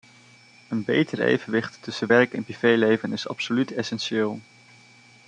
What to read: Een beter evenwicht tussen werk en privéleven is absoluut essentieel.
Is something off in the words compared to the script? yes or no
no